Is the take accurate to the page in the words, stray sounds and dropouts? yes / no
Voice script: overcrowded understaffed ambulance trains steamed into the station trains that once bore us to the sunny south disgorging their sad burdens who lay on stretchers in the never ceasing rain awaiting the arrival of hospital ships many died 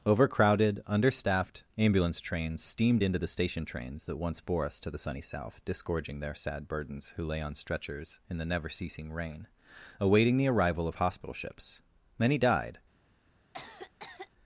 no